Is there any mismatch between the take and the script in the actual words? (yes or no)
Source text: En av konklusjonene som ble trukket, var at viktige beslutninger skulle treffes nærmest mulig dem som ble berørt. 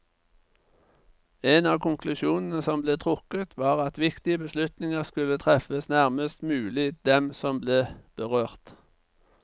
no